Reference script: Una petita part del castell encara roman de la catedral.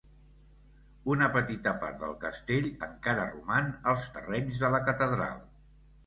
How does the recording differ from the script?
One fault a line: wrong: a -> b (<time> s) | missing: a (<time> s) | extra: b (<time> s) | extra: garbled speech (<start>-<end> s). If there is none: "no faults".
extra: als terrenys (3.9 s)